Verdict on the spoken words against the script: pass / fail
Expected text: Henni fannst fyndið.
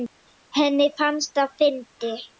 fail